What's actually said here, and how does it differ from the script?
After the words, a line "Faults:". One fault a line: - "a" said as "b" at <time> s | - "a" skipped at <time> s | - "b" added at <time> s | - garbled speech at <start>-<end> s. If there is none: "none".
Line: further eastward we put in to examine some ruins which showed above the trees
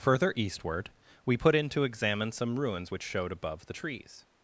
further eastward we put in to examine some ruins which showed above the trees
Faults:
none